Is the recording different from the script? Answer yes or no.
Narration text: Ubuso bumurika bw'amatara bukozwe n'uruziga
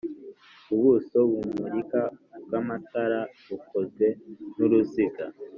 no